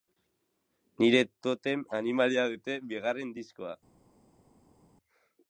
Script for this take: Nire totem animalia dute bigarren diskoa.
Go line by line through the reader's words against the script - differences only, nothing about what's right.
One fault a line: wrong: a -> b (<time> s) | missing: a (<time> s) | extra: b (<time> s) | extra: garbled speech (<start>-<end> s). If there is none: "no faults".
no faults